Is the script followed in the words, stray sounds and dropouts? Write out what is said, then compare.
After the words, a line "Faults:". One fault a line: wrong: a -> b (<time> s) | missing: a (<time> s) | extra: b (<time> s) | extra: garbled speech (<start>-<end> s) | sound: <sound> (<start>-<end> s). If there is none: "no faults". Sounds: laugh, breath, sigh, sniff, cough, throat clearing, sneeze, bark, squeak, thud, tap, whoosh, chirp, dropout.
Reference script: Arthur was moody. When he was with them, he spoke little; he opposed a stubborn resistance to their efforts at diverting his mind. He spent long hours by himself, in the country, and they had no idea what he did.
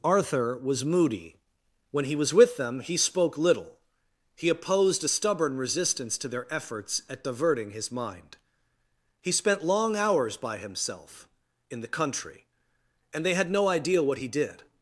Arthur was moody. When he was with them, he spoke little; he opposed a stubborn resistance to their efforts at diverting his mind. He spent long hours by himself, in the country, and they had no idea what he did.
Faults:
no faults